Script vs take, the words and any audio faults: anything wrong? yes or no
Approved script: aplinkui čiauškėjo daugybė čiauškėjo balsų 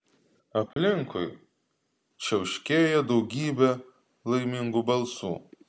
yes